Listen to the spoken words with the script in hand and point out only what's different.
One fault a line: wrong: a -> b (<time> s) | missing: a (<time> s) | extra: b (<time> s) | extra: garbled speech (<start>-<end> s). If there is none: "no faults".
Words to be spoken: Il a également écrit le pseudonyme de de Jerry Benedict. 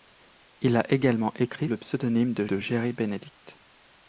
no faults